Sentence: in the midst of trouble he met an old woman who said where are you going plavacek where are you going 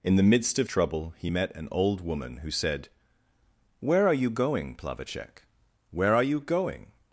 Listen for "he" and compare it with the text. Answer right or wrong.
right